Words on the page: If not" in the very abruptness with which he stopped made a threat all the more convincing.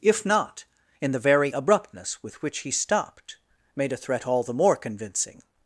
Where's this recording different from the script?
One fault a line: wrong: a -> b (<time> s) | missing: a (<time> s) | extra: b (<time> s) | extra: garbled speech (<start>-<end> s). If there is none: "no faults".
no faults